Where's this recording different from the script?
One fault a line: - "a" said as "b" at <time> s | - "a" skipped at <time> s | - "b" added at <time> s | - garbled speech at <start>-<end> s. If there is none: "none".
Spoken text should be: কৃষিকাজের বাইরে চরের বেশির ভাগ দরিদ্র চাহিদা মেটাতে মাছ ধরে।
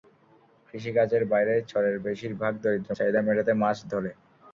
none